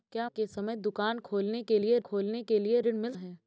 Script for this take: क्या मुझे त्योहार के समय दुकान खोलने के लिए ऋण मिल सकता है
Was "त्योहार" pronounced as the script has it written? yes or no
no